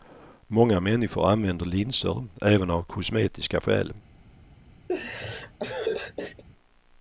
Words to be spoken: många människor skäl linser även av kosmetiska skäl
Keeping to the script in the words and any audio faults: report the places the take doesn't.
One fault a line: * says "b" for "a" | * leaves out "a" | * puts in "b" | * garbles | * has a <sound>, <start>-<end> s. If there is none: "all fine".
* says "använder" for "skäl"
* has a laugh, 4.9-6.4 s